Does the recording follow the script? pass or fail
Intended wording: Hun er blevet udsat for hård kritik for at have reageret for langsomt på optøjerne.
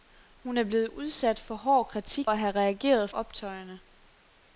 fail